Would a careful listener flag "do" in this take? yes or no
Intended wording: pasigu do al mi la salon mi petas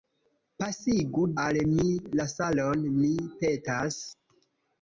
yes